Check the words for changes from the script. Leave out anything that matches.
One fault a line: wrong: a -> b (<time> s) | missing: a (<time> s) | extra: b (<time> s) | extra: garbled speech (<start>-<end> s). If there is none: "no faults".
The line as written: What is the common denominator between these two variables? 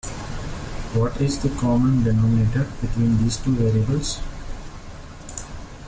no faults